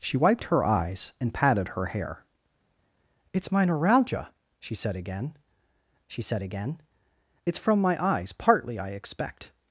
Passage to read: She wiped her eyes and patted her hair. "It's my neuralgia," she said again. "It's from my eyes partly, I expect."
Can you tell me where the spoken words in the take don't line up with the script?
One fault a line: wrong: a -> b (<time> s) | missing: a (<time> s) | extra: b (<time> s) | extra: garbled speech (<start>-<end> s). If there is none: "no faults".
extra: she said again (6.1 s)